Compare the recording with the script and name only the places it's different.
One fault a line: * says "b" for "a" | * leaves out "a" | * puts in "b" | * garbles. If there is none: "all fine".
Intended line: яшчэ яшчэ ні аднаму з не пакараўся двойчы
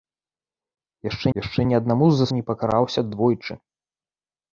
all fine